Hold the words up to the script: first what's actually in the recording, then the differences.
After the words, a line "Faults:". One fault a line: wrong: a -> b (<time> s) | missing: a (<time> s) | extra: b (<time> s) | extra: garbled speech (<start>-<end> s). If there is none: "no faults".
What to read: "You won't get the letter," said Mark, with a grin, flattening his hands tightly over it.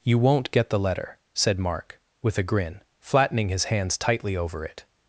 "You won't get the letter," said Mark, with a grin, flattening his hands tightly over it.
Faults:
no faults